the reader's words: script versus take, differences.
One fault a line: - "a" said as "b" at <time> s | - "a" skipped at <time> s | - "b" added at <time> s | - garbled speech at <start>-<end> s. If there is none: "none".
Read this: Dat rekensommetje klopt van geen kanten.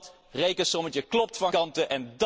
- "geen" skipped at 1.5 s